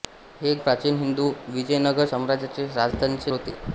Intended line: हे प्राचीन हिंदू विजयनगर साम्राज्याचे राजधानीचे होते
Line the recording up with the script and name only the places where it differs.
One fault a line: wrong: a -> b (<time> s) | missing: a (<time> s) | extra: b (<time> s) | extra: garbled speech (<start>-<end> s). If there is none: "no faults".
no faults